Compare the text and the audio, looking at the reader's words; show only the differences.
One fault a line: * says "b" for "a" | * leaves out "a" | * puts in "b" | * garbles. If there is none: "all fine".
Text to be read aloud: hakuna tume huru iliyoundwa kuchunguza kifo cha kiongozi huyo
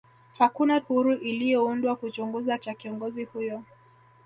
* leaves out "tume"
* leaves out "kifo"